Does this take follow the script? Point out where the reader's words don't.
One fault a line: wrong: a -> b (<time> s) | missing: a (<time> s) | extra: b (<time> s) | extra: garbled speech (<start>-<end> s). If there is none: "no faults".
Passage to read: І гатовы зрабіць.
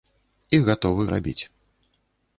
no faults